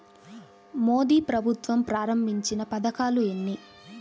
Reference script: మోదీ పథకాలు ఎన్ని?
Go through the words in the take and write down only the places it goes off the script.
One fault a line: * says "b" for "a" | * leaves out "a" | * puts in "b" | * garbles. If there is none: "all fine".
* puts in "ప్రభుత్వం ప్రారంభించిన"